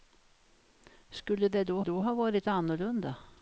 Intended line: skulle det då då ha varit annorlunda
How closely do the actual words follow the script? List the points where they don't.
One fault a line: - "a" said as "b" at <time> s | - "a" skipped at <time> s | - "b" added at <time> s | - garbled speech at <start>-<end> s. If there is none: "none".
none